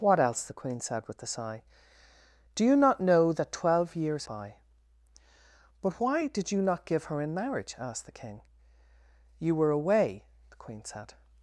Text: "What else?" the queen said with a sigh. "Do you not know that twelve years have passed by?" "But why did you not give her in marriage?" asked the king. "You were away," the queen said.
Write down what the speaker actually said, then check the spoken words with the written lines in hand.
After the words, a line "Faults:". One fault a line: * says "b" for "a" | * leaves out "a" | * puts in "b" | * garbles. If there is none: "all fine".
"What else?" the queen said with a sigh. "Do you not know that twelve years by?" "But why did you not give her in marriage?" asked the king. "You were away," the queen said.
Faults:
* leaves out "have passed"